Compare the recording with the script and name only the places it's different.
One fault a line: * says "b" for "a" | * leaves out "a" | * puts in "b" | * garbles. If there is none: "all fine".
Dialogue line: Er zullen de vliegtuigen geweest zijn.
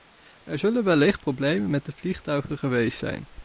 * puts in "wellicht problemen met"